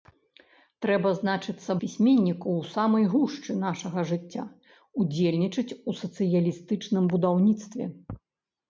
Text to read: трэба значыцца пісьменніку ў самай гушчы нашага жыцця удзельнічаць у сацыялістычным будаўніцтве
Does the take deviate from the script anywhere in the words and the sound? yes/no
no